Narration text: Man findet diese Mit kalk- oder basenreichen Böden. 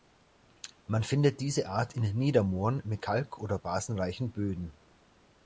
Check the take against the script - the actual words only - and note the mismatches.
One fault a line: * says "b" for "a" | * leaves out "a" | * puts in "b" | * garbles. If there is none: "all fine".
* puts in "Art in Niedermooren"